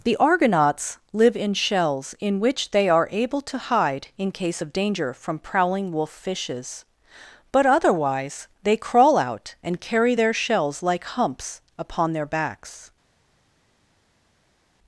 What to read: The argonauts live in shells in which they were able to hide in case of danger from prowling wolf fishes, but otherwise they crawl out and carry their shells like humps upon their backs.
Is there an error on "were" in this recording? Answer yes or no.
yes